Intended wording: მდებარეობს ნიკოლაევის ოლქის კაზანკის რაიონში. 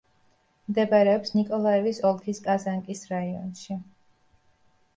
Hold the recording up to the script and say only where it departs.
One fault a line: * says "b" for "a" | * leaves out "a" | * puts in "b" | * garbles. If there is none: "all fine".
all fine